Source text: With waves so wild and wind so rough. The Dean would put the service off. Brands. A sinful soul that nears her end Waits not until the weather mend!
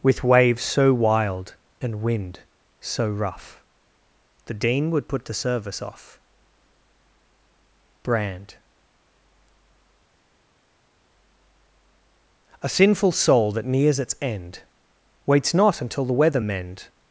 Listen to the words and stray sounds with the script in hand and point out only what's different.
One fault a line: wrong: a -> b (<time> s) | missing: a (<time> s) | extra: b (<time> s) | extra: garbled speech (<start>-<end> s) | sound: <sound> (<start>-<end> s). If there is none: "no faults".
wrong: Brands -> Brand (8.0 s)
wrong: her -> its (14.0 s)